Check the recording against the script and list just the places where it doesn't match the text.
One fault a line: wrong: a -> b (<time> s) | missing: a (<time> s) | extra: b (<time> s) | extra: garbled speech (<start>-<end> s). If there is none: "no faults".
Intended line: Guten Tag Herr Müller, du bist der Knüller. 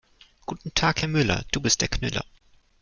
no faults